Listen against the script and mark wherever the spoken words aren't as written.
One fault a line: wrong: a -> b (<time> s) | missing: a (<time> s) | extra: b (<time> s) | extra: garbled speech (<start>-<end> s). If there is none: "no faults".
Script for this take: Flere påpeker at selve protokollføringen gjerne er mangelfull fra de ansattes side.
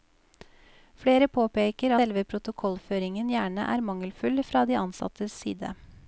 missing: at (1.9 s)